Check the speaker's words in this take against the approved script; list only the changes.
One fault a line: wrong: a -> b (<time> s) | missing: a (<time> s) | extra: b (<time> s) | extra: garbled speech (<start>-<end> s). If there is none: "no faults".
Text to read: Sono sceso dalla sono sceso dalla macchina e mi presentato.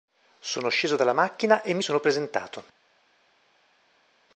missing: sono sceso dalla (1.1 s)
extra: sono (1.8 s)